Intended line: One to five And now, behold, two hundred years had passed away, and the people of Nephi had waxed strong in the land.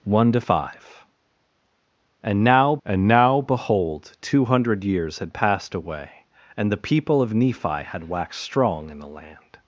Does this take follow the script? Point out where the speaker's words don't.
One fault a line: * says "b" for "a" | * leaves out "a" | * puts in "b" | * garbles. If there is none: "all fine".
* puts in "And now"